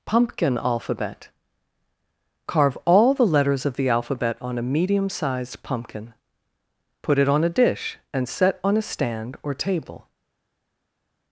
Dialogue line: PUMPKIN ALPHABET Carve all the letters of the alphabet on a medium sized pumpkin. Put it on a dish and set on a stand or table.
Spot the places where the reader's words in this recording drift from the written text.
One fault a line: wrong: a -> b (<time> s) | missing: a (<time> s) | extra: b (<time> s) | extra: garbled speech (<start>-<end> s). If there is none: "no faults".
no faults